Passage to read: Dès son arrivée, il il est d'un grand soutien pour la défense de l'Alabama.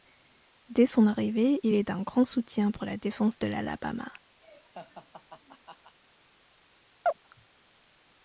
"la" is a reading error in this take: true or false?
false